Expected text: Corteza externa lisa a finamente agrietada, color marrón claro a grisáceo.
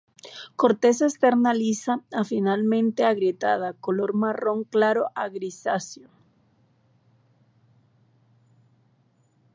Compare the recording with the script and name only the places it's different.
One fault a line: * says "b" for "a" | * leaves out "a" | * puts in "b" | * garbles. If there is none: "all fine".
all fine